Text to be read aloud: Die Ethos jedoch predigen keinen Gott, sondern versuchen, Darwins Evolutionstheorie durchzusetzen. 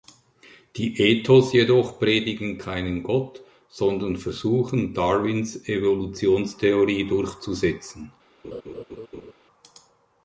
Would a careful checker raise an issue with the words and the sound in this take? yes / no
yes